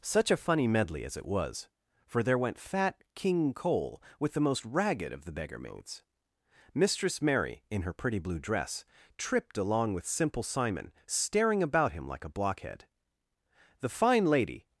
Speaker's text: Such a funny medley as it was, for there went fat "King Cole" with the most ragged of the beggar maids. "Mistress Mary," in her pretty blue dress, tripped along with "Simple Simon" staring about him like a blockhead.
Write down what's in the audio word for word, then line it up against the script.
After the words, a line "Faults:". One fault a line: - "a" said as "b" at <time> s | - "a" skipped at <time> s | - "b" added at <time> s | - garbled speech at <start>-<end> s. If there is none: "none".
Such a funny medley as it was, for there went fat "King Cole" with the most ragged of the beggar maids. "Mistress Mary," in her pretty blue dress, tripped along with "Simple Simon" staring about him like a blockhead. The fine lady
Faults:
- "The fine lady" added at 13.8 s